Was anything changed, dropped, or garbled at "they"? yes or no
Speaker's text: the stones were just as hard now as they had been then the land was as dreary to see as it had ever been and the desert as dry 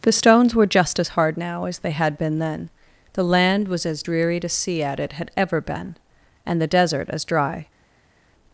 no